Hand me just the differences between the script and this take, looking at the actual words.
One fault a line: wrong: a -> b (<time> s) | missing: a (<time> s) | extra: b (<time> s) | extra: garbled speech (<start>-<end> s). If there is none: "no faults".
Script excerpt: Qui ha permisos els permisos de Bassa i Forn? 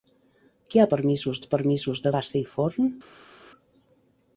no faults